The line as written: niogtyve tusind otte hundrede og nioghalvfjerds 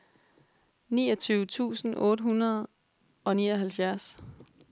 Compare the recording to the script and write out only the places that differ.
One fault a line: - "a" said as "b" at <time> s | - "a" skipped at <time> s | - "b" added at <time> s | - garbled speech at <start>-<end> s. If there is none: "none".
none